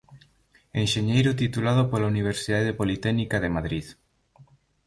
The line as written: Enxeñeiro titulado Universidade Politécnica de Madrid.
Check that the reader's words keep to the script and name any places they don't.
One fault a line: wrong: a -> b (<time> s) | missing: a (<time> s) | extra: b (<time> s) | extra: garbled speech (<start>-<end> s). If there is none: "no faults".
extra: pola (1.9 s)